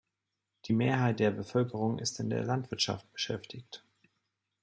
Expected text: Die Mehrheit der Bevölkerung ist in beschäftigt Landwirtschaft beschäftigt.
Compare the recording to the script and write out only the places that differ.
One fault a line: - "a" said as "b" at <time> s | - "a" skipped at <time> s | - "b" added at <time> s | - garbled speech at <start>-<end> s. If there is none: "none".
- "beschäftigt" said as "der" at 2.3 s